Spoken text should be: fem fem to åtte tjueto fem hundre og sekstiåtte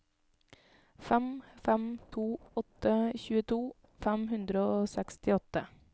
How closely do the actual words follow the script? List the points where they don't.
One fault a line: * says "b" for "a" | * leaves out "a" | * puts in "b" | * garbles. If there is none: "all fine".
all fine